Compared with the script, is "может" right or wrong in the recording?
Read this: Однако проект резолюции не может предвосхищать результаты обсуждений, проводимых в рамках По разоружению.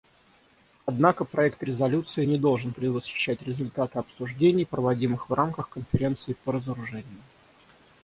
wrong